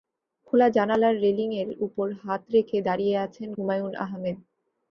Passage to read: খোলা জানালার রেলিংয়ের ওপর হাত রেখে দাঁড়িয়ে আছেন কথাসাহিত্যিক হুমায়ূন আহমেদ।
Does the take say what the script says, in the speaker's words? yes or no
no